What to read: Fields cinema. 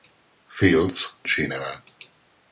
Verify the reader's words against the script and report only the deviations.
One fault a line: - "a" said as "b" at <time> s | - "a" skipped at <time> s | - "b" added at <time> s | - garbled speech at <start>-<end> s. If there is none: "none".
none